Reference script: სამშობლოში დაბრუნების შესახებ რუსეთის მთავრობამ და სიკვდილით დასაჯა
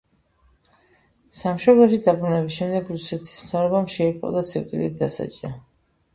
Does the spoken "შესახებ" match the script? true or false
false